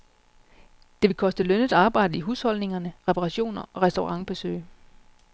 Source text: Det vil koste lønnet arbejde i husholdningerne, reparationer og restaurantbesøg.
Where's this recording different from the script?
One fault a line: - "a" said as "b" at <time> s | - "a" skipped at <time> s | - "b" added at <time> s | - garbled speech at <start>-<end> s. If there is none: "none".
none